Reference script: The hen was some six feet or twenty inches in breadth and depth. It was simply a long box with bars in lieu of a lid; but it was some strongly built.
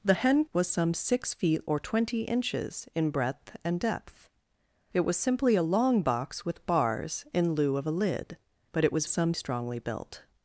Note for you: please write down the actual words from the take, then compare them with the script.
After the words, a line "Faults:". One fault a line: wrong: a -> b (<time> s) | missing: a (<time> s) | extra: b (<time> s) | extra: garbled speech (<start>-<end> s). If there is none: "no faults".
The hen was some six feet or twenty inches in breadth and depth. It was simply a long box with bars in lieu of a lid; but it was some strongly built.
Faults:
no faults